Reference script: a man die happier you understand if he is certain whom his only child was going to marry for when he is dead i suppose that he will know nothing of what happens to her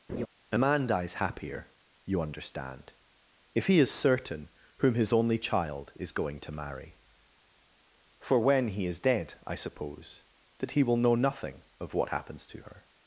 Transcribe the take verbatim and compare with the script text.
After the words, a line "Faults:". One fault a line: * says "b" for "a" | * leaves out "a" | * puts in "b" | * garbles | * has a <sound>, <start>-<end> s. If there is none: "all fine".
a man dies happier you understand if he is certain whom his only child is going to marry for when he is dead i suppose that he will know nothing of what happens to her
Faults:
* has a laugh, 0.1-0.3 s
* says "dies" for "die"
* says "is" for "was"